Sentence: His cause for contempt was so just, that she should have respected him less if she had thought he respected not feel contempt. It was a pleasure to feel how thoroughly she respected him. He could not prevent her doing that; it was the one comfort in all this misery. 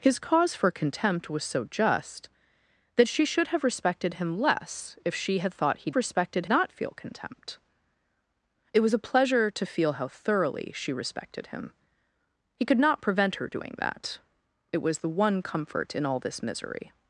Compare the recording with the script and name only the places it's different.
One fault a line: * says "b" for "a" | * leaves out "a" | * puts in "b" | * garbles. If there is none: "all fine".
all fine